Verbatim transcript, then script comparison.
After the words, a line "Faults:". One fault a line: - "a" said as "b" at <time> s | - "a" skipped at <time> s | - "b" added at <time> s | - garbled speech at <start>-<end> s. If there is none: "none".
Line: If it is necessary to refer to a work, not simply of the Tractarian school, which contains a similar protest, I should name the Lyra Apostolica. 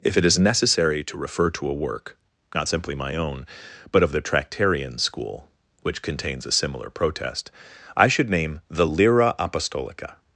If it is necessary to refer to a work, not simply my own, but of the Tractarian school, which contains a similar protest, I should name the Lyra Apostolica.
Faults:
- "my own but" added at 2.9 s